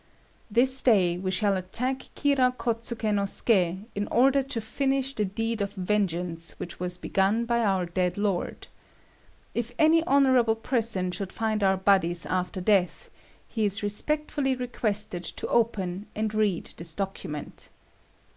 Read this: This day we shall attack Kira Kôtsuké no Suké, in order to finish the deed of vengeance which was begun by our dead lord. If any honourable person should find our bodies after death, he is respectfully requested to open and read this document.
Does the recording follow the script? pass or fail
pass